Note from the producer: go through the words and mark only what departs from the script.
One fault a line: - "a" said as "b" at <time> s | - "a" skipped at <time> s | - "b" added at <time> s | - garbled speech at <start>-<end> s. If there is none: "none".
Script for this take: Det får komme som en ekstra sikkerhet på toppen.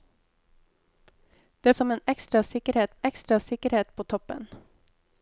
- "får komme som en" said as "som en ekstra sikkerhet" at 1.7 s